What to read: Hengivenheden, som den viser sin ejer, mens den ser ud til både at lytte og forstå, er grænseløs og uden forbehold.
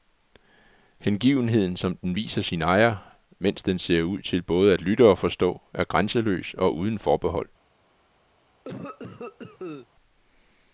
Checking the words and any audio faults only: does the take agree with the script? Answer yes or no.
no